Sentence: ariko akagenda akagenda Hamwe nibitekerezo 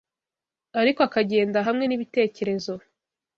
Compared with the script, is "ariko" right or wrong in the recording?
right